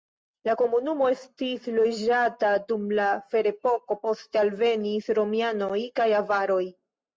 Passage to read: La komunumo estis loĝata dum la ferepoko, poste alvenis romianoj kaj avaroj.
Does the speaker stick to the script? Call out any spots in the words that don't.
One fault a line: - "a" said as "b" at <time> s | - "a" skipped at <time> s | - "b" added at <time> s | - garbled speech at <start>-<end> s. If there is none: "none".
none